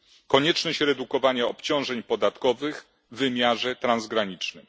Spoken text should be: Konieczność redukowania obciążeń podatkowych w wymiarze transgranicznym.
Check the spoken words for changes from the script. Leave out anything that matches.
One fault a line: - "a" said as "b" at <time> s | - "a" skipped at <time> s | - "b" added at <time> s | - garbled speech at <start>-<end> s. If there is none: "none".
none